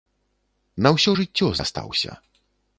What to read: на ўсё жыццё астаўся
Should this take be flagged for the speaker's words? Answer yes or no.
no